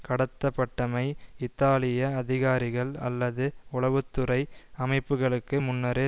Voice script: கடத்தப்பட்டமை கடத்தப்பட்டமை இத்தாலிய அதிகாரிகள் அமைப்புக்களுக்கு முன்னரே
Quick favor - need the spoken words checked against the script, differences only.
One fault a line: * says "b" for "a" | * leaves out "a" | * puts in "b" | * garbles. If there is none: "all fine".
* leaves out "கடத்தப்பட்டமை"
* puts in "அல்லது உளவு துறை"